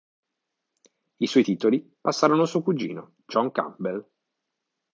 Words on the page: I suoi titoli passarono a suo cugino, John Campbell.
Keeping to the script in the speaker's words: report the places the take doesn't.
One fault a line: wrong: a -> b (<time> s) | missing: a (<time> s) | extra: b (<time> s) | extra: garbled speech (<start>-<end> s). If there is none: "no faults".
no faults